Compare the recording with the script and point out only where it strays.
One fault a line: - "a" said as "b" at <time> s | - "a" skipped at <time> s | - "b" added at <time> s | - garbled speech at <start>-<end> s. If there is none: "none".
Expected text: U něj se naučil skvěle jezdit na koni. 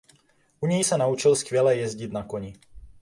none